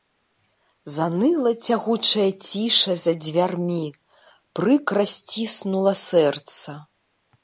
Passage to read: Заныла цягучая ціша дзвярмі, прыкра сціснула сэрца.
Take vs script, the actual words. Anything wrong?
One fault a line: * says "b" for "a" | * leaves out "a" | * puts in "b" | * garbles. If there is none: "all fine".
* puts in "за"